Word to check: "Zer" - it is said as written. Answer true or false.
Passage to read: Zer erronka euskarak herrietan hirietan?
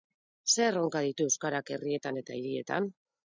true